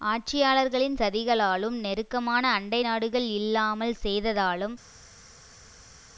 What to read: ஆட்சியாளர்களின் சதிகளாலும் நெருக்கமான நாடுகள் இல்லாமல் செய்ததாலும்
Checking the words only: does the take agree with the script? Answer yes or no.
no